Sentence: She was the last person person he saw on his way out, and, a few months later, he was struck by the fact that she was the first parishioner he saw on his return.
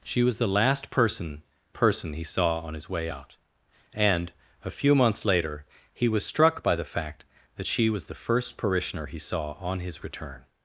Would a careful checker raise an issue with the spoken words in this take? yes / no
no